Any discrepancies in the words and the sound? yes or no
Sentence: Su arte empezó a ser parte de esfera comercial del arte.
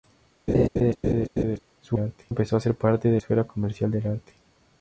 yes